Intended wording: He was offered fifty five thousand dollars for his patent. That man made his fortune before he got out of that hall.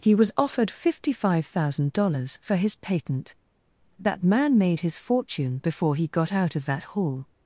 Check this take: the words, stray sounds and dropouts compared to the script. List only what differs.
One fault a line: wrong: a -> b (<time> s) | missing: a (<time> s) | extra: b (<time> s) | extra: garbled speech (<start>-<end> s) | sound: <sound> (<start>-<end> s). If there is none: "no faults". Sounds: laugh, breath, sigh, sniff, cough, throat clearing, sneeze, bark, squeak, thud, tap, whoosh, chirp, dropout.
no faults